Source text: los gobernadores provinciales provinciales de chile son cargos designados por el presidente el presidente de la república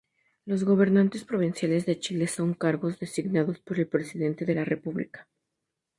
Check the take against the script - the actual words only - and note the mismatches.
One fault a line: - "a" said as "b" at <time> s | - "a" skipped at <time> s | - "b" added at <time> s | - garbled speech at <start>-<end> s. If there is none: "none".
- "provinciales" skipped at 1.9 s
- "el presidente" skipped at 4.5 s